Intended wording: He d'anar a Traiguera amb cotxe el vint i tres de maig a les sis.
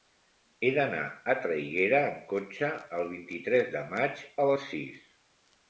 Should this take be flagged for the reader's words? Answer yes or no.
no